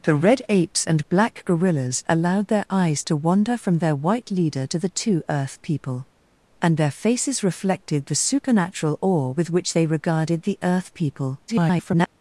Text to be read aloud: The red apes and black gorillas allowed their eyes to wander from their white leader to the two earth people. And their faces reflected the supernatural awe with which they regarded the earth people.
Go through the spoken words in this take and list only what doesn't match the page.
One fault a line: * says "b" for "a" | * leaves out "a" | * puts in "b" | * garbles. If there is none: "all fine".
* garbles